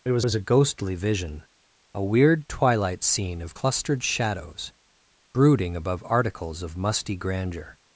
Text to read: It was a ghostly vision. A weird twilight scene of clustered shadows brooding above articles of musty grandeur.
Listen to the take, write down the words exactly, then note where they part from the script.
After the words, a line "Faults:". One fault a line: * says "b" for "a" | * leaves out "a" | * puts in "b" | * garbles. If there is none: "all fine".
It was was a ghostly vision. A weird twilight scene of clustered shadows brooding above articles of musty grandeur.
Faults:
* puts in "was"